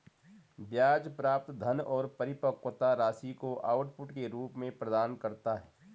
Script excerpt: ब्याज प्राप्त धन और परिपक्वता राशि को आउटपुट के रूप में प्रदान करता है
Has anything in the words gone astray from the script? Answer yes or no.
no